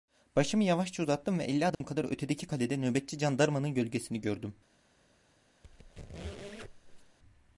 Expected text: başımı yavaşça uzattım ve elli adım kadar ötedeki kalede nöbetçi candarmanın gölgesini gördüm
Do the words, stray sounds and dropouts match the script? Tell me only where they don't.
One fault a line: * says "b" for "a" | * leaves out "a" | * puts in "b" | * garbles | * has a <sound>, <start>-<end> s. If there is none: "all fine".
* has a dropout, 1.7-1.8 s
* has a squeak, 5.6-7.2 s